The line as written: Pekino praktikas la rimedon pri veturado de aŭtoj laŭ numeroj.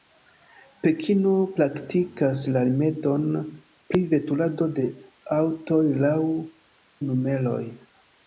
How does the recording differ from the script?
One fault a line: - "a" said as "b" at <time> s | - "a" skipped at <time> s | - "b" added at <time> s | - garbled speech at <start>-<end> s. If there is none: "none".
none